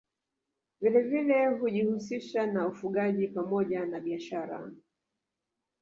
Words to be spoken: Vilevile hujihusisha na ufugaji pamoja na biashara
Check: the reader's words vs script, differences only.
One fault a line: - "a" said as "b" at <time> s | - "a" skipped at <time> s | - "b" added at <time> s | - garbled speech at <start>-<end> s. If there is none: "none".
none